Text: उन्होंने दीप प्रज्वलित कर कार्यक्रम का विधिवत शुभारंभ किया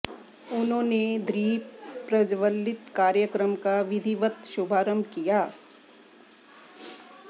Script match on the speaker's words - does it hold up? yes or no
no